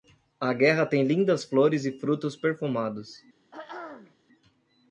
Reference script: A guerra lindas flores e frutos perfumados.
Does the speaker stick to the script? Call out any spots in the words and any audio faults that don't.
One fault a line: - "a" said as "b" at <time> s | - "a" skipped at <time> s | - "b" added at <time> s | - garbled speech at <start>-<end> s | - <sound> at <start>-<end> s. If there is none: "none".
- "tem" added at 0.8 s
- throat clearing at 3.5-4.2 s